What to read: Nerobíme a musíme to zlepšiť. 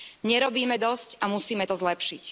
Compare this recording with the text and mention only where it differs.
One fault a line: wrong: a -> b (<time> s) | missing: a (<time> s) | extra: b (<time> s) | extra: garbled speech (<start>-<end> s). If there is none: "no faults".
extra: dosť (0.8 s)